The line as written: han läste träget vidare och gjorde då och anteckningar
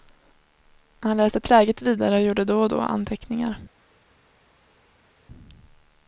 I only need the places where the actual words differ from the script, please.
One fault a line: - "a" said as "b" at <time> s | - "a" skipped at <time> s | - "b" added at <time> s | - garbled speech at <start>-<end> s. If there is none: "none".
- "då" added at 2.7 s